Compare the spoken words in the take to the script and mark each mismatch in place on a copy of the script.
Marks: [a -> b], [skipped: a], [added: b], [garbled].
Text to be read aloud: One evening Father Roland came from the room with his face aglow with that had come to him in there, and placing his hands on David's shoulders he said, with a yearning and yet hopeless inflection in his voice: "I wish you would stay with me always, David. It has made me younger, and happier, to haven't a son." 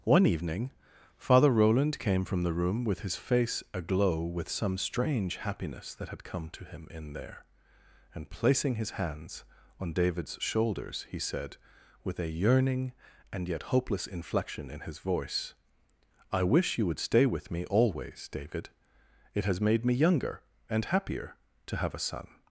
One evening Father Roland came from the room with his face aglow with [added: some strange happiness] that had come to him in there, and placing his hands on David's shoulders he said, with a yearning and yet hopeless inflection in his voice: "I wish you would stay with me always, David. It has made me younger, and happier, to [haven't -> have] a son."